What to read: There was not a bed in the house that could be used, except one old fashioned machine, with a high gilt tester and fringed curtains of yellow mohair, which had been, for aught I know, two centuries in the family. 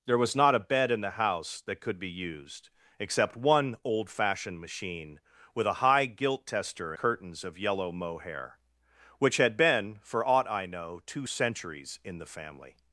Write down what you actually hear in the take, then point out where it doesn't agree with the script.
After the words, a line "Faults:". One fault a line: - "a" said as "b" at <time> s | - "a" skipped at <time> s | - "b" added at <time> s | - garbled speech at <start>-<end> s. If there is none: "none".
There was not a bed in the house that could be used, except one old fashioned machine, with a high gilt tester curtains of yellow mohair, which had been, for aught I know, two centuries in the family.
Faults:
- "and fringed" skipped at 6.9 s